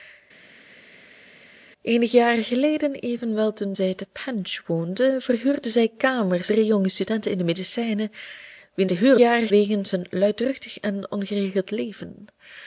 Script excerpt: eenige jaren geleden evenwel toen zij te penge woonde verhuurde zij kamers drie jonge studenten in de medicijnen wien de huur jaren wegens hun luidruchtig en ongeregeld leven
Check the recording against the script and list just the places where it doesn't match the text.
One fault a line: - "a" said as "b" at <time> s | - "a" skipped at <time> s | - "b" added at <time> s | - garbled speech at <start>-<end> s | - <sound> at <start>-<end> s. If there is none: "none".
none